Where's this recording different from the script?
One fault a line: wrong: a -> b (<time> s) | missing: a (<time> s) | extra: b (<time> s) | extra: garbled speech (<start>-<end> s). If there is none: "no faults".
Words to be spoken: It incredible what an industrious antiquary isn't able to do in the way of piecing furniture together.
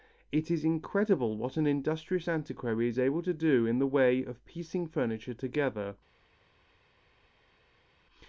extra: is (0.5 s)
wrong: isn't -> is (2.9 s)